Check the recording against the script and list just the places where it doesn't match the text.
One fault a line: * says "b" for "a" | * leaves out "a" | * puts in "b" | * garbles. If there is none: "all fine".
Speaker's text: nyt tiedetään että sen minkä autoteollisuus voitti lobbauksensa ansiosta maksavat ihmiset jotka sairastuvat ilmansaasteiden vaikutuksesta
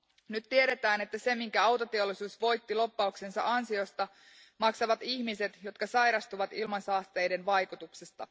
all fine